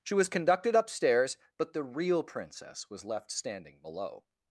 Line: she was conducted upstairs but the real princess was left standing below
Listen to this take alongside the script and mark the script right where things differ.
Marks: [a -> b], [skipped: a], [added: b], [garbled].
she was conducted upstairs but the real princess was left standing below